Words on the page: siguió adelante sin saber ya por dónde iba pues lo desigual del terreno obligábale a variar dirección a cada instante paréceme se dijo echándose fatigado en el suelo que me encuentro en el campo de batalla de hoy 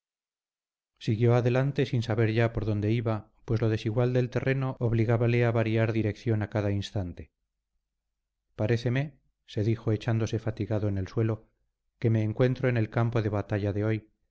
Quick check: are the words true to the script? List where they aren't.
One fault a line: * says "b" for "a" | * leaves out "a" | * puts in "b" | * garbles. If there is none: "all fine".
all fine